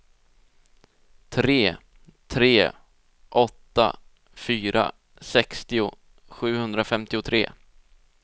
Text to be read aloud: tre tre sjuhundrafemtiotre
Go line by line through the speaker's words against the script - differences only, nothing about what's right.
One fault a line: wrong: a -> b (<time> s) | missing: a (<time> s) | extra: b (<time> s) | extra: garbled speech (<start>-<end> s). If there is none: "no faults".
extra: åtta fyra sextio (3.3 s)